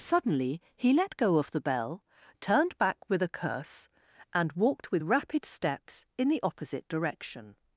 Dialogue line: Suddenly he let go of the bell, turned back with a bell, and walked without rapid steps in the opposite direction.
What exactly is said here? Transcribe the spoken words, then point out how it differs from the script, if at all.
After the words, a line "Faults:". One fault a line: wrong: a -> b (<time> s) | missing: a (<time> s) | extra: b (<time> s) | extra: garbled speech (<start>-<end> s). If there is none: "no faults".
Suddenly he let go of the bell, turned back with a curse, and walked with rapid steps in the opposite direction.
Faults:
wrong: bell -> curse (3.3 s)
wrong: without -> with (4.9 s)